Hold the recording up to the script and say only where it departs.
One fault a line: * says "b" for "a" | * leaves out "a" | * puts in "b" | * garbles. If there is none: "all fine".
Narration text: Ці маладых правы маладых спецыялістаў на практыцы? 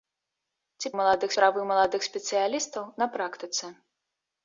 all fine